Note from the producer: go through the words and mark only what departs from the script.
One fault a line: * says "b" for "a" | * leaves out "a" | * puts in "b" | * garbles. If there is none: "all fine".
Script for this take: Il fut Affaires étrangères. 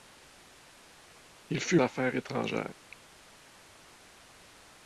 all fine